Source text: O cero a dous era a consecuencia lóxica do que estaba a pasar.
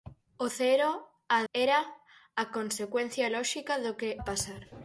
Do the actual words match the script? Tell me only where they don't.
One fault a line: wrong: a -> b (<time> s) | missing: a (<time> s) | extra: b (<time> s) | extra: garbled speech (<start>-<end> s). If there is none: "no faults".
missing: dous (1.4 s)
missing: estaba (4.1 s)